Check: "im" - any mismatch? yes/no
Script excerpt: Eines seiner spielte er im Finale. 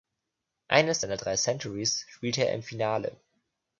no